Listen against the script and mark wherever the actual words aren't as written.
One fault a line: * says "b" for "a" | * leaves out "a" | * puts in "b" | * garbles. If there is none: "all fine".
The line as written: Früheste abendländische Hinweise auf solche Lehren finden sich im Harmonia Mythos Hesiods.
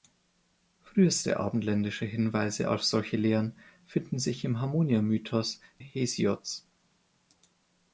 all fine